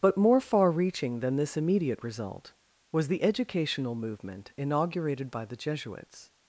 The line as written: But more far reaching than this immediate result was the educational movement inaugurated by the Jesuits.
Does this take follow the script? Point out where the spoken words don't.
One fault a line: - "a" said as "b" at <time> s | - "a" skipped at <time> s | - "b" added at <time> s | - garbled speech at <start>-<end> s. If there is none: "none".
none